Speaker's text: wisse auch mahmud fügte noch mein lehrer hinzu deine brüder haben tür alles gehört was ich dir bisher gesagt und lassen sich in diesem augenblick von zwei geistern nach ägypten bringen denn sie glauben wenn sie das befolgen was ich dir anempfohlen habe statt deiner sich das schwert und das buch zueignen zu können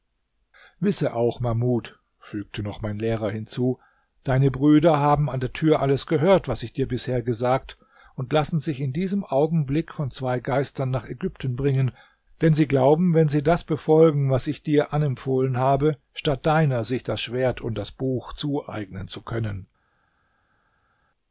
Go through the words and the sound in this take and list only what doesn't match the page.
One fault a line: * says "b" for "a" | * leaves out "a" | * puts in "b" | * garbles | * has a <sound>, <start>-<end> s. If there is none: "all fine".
* puts in "an der"